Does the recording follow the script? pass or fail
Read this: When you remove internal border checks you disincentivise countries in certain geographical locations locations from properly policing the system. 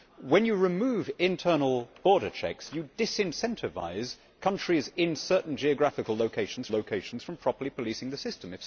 pass